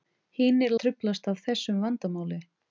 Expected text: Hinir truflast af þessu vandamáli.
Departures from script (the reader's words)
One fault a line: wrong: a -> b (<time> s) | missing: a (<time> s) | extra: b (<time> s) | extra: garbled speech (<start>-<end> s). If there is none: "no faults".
no faults